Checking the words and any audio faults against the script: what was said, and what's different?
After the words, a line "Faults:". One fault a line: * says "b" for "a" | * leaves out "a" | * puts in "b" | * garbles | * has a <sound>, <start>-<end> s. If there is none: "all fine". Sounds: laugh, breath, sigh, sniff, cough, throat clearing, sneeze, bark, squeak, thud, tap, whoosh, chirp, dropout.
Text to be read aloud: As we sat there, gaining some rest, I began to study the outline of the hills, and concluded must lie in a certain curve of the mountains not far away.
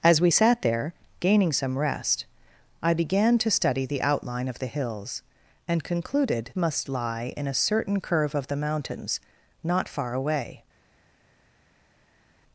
As we sat there, gaining some rest, I began to study the outline of the hills, and concluded must lie in a certain curve of the mountains not far away.
Faults:
all fine